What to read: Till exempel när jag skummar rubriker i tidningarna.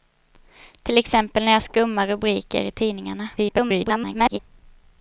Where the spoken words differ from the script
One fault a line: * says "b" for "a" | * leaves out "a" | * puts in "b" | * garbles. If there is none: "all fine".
* garbles